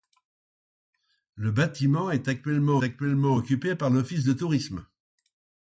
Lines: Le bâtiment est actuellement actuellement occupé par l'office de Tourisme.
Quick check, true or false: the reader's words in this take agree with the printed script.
true